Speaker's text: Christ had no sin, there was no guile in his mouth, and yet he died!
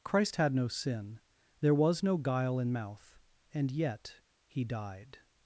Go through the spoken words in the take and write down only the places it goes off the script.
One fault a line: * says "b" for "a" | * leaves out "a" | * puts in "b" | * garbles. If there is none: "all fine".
* leaves out "his"